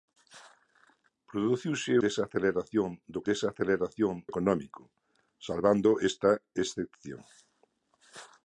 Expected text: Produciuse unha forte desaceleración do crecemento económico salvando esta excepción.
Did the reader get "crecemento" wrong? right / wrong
wrong